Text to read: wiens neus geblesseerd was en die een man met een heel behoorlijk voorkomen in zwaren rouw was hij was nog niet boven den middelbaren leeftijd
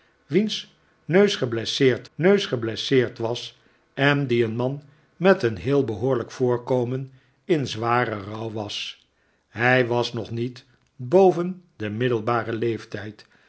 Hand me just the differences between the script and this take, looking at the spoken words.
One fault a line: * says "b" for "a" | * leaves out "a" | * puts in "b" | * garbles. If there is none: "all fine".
* puts in "neus geblesseerd"